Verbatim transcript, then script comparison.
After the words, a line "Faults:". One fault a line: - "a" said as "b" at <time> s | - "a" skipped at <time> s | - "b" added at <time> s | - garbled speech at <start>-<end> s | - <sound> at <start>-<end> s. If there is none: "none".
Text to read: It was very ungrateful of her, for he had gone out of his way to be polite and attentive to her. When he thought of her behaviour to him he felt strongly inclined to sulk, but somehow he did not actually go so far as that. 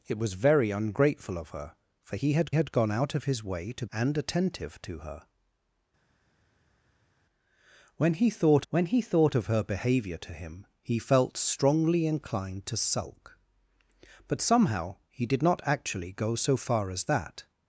It was very ungrateful of her, for he had had gone out of his way to and attentive to her. When he thought when he thought of her behaviour to him he felt strongly inclined to sulk, but somehow he did not actually go so far as that.
Faults:
- "had" added at 2.5 s
- "be polite" skipped at 3.9 s
- "when he thought" added at 8.7 s